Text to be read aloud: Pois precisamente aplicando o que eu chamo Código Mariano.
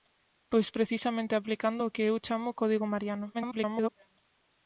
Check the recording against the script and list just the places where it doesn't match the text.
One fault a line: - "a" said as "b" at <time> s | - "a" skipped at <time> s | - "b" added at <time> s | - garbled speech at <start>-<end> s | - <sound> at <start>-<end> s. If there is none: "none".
- garbled speech at 3.3-3.9 s